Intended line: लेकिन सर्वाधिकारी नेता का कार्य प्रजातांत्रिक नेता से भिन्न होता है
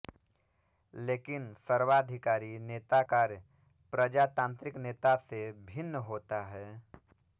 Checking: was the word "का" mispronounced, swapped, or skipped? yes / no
yes